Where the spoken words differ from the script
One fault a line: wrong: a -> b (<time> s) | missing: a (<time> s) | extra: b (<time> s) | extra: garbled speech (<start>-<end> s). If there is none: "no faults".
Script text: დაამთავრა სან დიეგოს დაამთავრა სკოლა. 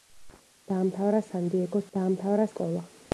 no faults